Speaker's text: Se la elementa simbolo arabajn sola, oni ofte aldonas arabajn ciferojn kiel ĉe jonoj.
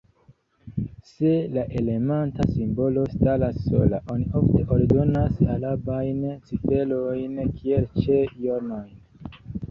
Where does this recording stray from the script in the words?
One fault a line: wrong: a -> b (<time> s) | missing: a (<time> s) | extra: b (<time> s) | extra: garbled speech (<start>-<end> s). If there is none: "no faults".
wrong: arabajn -> staras (3.1 s)